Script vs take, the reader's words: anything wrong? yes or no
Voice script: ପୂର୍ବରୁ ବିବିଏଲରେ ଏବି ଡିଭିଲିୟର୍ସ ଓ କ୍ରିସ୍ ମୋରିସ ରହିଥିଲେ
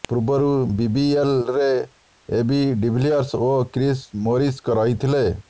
no